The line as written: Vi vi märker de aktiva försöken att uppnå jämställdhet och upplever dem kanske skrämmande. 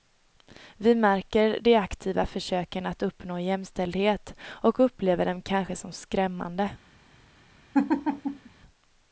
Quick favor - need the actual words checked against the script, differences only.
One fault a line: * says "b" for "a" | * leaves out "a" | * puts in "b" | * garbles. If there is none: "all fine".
* leaves out "vi"
* puts in "som"